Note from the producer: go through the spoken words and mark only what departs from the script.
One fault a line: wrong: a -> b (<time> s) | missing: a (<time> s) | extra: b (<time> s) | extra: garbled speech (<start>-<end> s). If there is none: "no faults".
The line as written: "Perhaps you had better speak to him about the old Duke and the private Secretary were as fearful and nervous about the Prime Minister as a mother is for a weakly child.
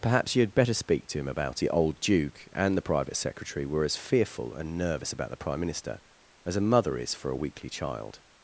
no faults